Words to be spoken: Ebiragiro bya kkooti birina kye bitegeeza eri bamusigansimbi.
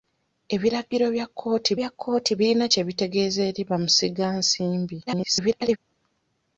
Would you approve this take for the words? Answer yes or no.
no